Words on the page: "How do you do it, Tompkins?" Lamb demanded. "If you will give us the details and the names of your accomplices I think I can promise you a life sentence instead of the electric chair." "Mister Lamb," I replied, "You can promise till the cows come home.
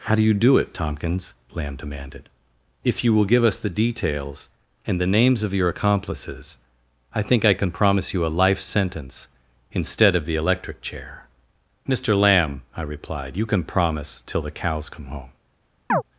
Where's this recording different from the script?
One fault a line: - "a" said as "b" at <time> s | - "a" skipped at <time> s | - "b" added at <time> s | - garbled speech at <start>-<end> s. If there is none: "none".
none